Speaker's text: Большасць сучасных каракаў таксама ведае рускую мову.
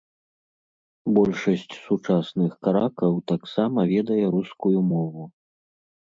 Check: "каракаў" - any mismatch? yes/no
no